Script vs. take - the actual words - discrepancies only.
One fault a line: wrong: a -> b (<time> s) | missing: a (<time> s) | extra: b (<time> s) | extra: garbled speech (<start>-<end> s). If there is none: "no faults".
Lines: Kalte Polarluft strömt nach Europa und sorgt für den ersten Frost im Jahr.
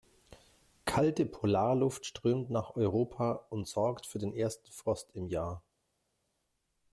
no faults